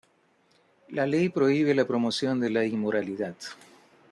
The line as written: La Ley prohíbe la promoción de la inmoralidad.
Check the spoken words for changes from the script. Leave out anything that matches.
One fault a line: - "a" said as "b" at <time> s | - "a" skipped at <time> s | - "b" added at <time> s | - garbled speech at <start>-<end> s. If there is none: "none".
none